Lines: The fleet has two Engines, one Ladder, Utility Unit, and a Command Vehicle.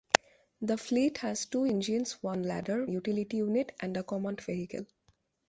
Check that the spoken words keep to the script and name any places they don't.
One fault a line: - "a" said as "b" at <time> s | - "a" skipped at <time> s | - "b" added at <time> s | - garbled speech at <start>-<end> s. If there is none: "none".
none